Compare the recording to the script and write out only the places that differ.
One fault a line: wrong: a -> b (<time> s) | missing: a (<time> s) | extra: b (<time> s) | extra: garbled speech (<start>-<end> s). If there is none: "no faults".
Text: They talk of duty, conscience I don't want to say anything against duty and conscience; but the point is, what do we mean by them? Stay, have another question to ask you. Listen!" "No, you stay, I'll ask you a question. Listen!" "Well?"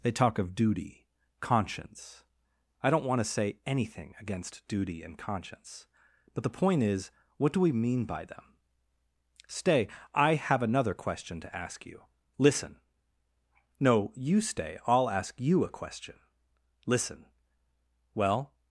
extra: I (10.1 s)